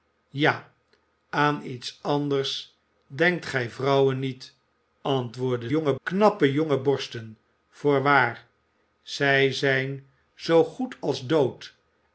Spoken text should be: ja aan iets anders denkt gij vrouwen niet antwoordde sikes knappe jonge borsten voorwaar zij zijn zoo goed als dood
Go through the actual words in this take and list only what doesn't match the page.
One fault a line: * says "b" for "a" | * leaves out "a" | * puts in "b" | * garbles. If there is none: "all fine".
* says "jonge" for "sikes"